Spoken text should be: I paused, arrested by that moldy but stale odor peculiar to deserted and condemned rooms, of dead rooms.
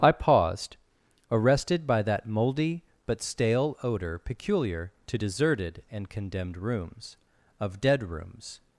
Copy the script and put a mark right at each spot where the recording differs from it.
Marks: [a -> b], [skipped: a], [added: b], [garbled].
I paused, arrested by that moldy but stale odor peculiar to deserted and condemned rooms, of dead rooms.